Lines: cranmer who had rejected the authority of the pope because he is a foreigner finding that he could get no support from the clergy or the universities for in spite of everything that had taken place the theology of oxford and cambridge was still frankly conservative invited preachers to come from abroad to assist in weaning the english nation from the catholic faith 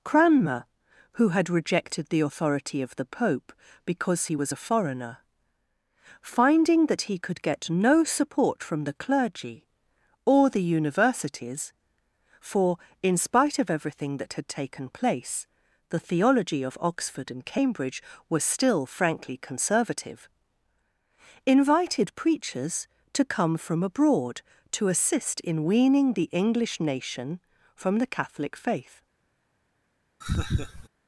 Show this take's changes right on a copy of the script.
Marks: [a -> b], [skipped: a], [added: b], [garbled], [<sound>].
cranmer who had rejected the authority of the pope because he [is -> was] a foreigner finding that he could get no support from the clergy or the universities for in spite of everything that had taken place the theology of oxford and cambridge was still frankly conservative invited preachers to come from abroad to assist in weaning the english nation from the catholic faith [laugh]